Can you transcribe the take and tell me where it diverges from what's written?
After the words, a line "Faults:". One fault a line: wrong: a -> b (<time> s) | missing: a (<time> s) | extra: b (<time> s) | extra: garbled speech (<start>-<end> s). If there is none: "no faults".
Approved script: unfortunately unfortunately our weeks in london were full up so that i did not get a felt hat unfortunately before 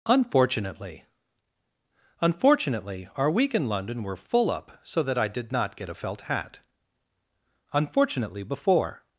unfortunately unfortunately our week in london were full up so that i did not get a felt hat unfortunately before
Faults:
wrong: weeks -> week (3.3 s)